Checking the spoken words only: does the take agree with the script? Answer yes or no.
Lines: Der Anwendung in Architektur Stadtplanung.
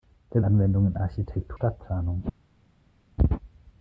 yes